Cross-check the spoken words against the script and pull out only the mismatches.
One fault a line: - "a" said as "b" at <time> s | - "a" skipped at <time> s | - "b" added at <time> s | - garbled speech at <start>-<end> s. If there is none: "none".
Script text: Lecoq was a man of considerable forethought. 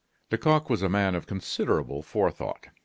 none